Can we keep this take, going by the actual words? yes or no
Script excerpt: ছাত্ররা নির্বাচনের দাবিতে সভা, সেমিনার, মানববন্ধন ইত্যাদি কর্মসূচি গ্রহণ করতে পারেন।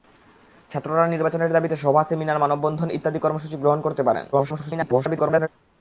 no